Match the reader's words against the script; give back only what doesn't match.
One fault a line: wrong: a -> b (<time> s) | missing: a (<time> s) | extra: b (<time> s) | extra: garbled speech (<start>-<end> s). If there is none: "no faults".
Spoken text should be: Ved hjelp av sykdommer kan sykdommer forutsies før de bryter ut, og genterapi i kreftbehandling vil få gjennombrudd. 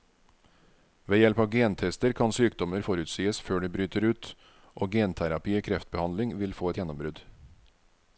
wrong: sykdommer -> gentester (1.5 s)
extra: et (6.7 s)